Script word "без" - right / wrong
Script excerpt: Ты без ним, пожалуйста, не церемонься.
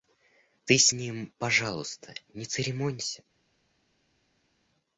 wrong